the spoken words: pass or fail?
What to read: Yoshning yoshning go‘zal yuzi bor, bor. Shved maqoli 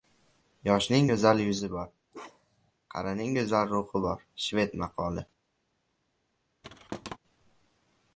fail